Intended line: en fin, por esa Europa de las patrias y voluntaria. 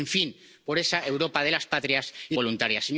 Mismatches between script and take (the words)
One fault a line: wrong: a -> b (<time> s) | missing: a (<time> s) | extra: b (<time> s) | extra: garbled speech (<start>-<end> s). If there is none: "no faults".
no faults